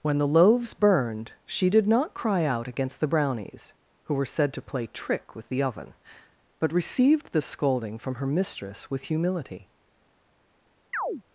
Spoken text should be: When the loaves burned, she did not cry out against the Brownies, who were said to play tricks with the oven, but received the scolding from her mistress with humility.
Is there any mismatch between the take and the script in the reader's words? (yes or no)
yes